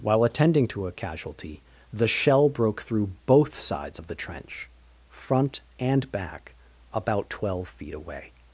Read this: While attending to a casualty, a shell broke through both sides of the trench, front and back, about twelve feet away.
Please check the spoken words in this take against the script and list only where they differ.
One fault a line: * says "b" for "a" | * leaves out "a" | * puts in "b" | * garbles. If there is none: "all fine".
* says "the" for "a"